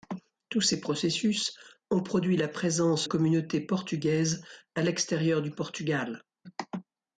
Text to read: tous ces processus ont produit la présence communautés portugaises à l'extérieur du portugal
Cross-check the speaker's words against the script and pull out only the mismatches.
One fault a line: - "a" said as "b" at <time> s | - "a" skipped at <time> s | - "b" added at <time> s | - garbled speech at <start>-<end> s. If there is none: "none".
none